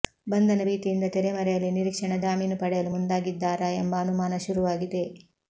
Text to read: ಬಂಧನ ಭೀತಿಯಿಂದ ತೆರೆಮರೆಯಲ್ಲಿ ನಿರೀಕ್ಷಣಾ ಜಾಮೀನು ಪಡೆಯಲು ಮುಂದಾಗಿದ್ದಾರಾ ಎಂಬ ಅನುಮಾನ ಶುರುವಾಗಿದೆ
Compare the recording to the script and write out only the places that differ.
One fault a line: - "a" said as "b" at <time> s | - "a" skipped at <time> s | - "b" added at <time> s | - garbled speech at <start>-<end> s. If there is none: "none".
none